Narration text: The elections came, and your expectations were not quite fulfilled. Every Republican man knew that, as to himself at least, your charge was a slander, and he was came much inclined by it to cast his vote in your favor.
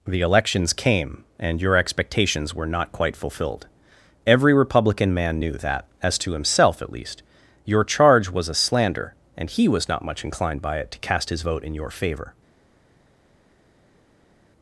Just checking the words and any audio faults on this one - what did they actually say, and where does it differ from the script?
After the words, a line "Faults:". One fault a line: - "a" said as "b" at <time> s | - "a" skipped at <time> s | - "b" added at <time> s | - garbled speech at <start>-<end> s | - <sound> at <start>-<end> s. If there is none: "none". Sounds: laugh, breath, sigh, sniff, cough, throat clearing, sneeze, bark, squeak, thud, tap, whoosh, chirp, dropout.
The elections came, and your expectations were not quite fulfilled. Every Republican man knew that, as to himself at least, your charge was a slander, and he was not much inclined by it to cast his vote in your favor.
Faults:
- "came" said as "not" at 9.9 s